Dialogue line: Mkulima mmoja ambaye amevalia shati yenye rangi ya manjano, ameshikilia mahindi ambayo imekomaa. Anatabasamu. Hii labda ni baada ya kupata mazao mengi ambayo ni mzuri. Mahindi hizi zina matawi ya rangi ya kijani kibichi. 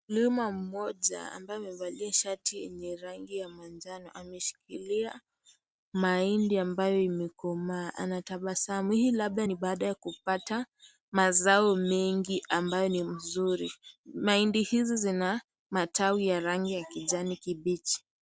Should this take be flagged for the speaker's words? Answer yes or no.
no